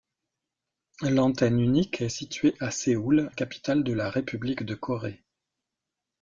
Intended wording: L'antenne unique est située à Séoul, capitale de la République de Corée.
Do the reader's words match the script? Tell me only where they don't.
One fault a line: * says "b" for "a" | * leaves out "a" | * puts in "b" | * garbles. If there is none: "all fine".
all fine